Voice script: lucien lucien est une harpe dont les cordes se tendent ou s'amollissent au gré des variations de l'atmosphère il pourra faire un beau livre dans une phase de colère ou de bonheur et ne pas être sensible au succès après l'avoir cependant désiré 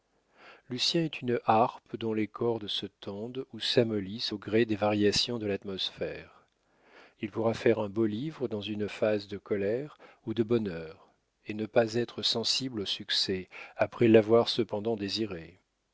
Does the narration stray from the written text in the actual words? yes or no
yes